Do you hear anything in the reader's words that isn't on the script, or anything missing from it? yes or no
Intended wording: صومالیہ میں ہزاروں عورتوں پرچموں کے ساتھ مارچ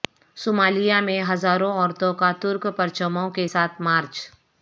yes